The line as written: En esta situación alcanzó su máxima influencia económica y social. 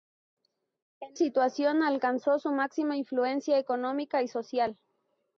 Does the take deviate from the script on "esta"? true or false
true